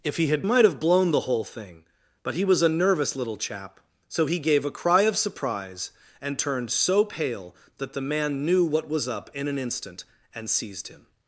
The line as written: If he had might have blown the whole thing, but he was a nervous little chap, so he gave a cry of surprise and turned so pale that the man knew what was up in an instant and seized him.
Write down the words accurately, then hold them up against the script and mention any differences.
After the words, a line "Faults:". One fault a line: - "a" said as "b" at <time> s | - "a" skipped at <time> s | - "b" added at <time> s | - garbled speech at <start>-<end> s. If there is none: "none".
If he had might have blown the whole thing, but he was a nervous little chap, so he gave a cry of surprise and turned so pale that the man knew what was up in an instant and seized him.
Faults:
none